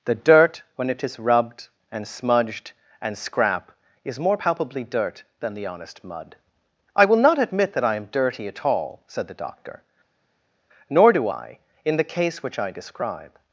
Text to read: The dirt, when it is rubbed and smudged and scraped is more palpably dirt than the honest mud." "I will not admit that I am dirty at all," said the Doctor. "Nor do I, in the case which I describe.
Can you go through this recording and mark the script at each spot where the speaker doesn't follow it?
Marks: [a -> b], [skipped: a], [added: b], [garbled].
The dirt, when it is rubbed and smudged and [scraped -> scrap] is more palpably dirt than the honest mud." "I will not admit that I am dirty at all," said the Doctor. "Nor do I, in the case which I describe.